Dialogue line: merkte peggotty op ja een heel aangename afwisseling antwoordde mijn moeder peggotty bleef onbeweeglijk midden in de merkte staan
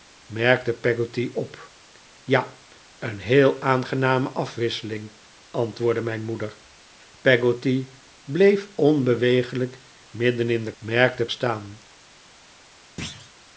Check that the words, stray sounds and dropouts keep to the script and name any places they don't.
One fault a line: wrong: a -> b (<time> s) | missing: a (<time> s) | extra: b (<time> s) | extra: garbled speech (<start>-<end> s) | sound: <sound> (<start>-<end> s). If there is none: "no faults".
sound: thud (13.0-13.3 s)